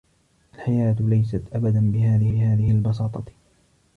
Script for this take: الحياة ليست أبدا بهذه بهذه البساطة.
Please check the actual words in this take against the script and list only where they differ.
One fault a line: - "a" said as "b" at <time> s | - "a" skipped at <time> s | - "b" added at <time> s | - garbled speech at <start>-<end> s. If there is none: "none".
none